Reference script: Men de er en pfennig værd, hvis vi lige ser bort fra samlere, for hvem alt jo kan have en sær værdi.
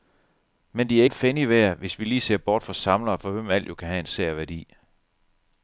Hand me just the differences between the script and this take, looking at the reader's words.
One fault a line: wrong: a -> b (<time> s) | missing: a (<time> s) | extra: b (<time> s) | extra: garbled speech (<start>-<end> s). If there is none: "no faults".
no faults